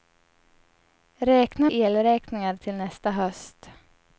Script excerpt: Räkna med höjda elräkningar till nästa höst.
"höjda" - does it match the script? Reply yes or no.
no